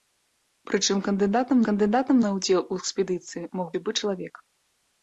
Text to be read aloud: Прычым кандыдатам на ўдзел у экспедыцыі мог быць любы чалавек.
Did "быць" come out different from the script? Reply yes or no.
yes